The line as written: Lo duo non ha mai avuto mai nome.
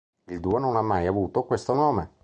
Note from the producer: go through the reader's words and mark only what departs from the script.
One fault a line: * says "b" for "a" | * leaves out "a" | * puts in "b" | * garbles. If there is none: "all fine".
* says "Il" for "Lo"
* says "questo" for "mai"